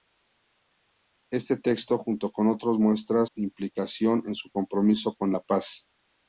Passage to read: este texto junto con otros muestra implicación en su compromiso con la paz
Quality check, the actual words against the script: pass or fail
pass